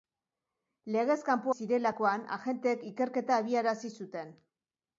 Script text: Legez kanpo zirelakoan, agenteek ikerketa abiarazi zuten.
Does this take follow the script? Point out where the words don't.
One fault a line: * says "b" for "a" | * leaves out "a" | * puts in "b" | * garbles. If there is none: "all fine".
all fine